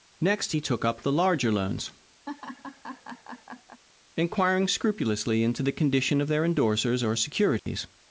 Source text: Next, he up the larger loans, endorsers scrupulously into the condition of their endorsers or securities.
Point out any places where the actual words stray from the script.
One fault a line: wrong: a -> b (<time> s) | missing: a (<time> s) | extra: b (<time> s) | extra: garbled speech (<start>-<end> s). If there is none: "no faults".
extra: took (0.6 s)
wrong: endorsers -> inquiring (4.2 s)